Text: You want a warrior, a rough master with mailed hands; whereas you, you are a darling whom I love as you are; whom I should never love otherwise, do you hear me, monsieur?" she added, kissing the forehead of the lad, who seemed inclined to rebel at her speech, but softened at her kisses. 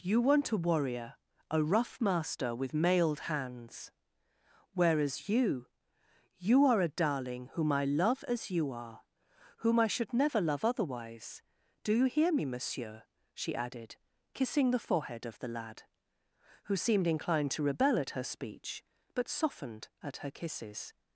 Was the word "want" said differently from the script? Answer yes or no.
no